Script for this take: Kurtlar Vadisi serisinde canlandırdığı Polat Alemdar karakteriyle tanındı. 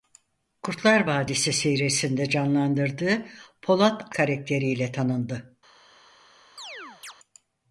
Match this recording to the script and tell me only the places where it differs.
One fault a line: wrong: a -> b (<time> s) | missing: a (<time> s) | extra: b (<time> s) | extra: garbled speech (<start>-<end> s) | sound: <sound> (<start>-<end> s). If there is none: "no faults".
missing: Alemdar (4.2 s)
sound: chirp (6.6-7.1 s)